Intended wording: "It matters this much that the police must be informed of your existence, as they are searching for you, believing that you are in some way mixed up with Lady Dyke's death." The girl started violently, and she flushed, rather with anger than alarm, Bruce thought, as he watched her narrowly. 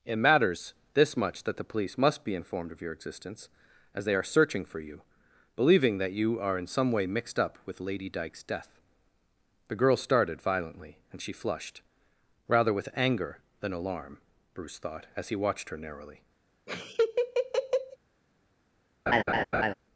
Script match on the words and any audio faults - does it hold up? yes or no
no